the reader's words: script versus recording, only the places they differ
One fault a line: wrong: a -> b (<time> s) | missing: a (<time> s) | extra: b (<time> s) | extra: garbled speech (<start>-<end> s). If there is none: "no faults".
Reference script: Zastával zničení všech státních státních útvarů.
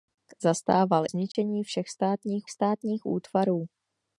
no faults